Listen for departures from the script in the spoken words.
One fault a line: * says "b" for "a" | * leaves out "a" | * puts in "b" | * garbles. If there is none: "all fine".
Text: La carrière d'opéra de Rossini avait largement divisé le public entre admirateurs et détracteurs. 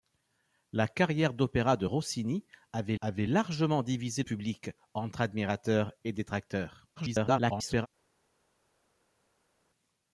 * puts in "avait"
* leaves out "le"
* garbles